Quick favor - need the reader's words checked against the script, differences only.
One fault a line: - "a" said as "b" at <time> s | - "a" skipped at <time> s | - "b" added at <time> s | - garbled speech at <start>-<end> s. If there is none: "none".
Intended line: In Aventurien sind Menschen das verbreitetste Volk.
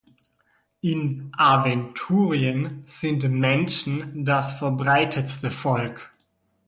none